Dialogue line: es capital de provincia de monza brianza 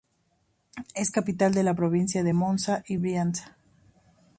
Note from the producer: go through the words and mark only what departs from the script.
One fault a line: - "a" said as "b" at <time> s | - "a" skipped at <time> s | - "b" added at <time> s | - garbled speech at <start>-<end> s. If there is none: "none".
- "la" added at 1.6 s
- "y" added at 2.9 s